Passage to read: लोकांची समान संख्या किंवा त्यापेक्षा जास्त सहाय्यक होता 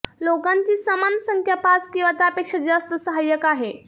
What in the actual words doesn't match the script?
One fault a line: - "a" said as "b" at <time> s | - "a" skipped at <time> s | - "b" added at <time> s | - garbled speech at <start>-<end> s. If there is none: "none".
- "पाच" added at 1.6 s
- "होता" said as "आहे" at 3.4 s